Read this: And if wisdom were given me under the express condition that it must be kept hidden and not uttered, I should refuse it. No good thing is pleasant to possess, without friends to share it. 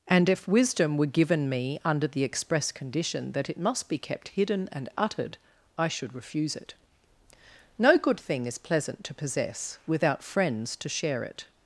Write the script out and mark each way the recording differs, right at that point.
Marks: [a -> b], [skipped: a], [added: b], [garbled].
And if wisdom were given me under the express condition that it must be kept hidden and [skipped: not] uttered, I should refuse it. No good thing is pleasant to possess, without friends to share it.